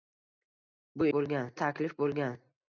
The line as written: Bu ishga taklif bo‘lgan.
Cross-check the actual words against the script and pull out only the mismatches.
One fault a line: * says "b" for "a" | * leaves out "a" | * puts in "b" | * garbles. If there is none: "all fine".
* says "bo‘lgan" for "ishga"